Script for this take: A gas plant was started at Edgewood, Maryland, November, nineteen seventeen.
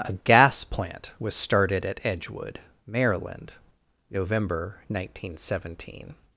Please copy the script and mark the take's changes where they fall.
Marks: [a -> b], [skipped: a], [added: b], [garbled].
A gas plant was started at Edgewood, Maryland, November, nineteen seventeen.